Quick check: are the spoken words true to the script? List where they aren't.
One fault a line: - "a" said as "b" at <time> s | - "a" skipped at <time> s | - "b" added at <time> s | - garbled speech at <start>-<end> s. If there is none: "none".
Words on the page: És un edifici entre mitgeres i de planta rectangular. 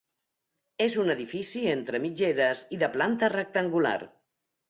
none